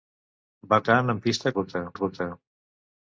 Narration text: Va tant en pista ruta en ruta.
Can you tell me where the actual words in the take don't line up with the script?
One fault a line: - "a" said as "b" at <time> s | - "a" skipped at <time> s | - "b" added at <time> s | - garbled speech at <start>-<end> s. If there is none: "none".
none